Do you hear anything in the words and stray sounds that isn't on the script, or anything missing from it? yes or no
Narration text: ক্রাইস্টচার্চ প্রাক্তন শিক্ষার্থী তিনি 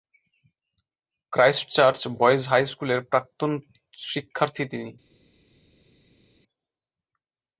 yes